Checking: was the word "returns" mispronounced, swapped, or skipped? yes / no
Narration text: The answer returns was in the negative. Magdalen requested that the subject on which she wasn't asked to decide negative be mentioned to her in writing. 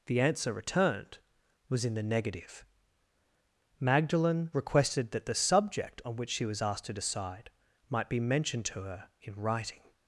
yes